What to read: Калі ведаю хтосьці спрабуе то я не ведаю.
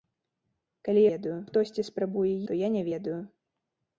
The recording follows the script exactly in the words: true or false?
true